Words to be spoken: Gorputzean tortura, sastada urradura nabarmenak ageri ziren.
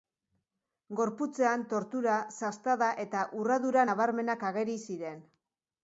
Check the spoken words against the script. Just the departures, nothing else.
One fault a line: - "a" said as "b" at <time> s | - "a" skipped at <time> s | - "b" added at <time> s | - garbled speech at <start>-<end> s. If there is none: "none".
- "eta" added at 3.1 s